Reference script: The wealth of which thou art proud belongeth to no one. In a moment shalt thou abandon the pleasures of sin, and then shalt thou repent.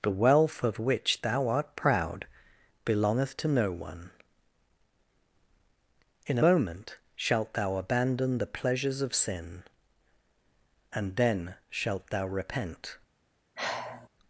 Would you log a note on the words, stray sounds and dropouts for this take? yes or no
yes